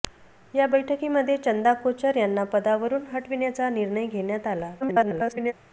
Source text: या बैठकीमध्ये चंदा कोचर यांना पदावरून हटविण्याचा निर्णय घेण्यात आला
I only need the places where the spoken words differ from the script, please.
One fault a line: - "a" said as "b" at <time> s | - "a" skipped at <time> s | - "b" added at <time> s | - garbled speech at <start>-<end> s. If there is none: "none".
- garbled speech at 4.8-5.5 s